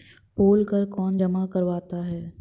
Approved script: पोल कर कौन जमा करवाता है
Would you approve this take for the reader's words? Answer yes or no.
yes